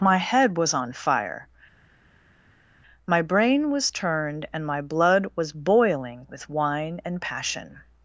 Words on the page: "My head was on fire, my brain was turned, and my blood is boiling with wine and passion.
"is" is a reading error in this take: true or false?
true